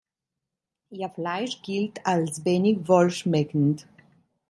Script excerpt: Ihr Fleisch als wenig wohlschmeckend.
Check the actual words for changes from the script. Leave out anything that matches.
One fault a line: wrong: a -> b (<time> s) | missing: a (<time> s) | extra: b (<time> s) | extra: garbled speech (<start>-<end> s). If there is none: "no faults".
extra: gilt (1.6 s)